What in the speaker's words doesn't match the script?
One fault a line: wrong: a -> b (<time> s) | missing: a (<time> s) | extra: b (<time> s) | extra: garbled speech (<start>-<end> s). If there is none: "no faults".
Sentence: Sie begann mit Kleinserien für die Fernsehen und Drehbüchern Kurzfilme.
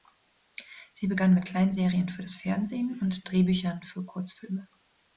wrong: die -> das (2.2 s)
extra: für (3.8 s)